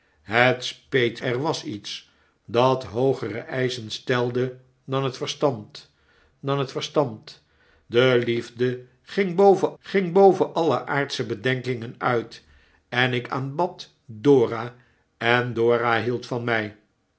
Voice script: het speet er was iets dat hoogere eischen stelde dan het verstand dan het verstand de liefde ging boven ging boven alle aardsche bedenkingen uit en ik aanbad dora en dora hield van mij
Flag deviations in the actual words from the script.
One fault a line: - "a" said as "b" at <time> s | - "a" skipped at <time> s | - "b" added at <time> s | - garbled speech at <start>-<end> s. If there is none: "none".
none